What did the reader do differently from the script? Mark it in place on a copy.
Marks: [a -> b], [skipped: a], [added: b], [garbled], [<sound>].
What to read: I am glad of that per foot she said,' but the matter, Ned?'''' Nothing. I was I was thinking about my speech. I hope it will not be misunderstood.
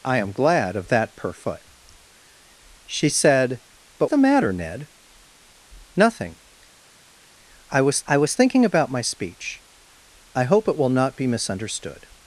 I am glad of that per foot she said,' but the matter, Ned?'''' Nothing. I was I was thinking about my speech. I hope it will not be misunderstood.